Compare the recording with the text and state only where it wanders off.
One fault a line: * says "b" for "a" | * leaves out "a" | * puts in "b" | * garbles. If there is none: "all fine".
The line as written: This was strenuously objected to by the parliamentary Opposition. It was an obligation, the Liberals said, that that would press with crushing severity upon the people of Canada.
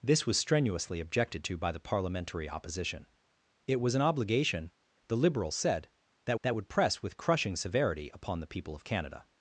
all fine